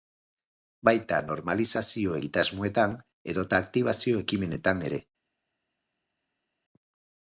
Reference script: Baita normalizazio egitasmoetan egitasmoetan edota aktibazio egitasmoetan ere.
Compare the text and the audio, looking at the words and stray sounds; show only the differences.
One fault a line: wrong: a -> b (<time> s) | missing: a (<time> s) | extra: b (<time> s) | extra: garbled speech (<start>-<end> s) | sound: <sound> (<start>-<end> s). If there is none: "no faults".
missing: egitasmoetan (3.0 s)
wrong: egitasmoetan -> ekimenetan (4.3 s)